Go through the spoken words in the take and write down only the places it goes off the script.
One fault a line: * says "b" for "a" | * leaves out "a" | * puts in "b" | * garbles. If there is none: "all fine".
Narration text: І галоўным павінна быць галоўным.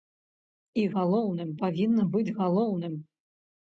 all fine